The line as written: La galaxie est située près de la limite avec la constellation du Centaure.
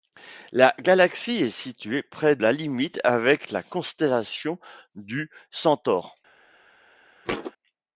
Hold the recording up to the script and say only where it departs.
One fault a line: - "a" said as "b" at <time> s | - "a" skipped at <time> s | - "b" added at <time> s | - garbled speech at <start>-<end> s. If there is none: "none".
- "de" skipped at 2.4 s